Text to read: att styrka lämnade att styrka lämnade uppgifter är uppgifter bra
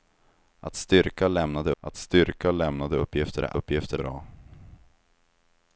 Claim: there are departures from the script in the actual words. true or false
false